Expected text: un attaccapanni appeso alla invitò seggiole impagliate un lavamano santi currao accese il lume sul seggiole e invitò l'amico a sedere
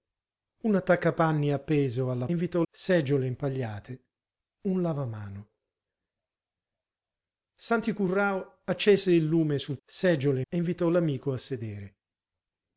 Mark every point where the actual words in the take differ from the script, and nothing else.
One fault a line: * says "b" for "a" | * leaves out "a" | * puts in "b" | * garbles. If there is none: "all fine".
all fine